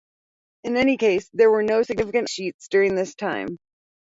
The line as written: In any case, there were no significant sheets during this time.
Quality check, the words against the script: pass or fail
pass